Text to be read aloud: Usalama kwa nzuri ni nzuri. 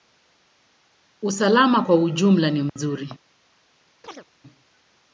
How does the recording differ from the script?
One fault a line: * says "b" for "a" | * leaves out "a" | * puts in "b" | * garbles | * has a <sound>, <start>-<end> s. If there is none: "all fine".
* says "ujumla" for "nzuri"
* has a dropout, 2.7-2.8 s
* has a chirp, 4.0-4.3 s